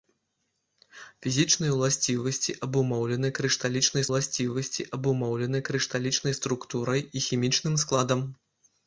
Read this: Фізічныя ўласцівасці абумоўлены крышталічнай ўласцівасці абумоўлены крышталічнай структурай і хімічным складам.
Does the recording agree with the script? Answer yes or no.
yes